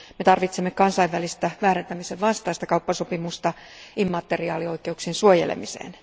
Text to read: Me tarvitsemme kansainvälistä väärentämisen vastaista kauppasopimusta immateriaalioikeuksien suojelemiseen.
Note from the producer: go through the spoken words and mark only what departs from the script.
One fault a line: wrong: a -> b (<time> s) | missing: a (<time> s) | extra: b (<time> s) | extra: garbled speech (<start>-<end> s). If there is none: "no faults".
no faults